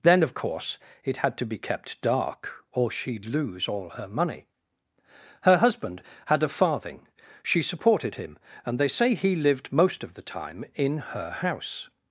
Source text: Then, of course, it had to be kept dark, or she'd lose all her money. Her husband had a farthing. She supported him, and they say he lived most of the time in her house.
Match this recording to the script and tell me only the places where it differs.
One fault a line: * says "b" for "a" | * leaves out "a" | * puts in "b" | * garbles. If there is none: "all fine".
all fine